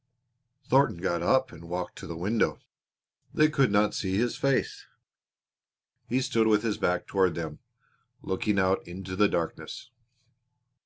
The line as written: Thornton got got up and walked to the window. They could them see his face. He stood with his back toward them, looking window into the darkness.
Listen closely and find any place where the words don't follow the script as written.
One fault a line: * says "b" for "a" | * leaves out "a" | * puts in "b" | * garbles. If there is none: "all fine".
* leaves out "got"
* says "not" for "them"
* says "out" for "window"